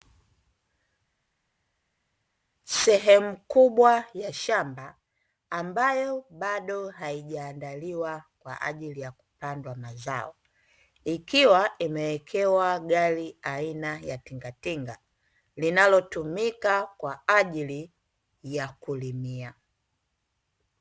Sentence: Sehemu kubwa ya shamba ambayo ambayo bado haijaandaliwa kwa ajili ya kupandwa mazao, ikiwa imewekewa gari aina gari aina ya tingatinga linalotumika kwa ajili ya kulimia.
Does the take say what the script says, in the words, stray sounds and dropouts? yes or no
no